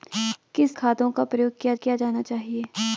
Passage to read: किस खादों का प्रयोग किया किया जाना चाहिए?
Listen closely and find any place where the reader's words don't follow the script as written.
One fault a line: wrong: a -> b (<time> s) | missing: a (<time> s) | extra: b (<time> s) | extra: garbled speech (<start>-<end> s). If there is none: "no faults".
no faults